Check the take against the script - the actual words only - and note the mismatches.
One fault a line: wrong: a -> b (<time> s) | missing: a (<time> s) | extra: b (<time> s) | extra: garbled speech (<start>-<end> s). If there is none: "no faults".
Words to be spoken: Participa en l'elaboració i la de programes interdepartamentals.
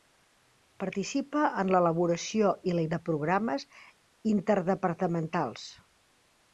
no faults